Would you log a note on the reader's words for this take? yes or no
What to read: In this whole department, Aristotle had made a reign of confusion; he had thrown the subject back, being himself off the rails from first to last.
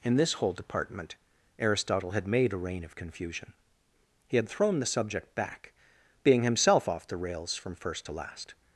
no